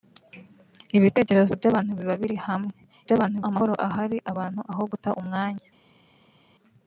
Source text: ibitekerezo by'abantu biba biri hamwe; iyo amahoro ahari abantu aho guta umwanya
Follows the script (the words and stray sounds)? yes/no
no